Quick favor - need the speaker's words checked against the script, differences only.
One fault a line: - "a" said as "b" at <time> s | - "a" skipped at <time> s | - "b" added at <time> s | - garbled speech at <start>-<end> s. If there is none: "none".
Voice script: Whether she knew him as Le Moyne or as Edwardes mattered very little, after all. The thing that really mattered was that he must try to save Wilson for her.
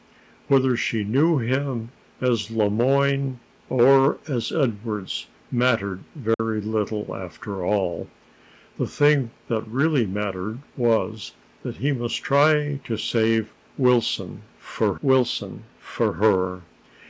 - "Wilson for" added at 15.0 s